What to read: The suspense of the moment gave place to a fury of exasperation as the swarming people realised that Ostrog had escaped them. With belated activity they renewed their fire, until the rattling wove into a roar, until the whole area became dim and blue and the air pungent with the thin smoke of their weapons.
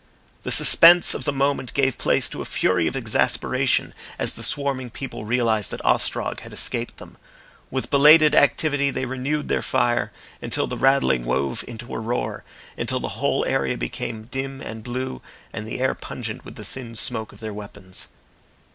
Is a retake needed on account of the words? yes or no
no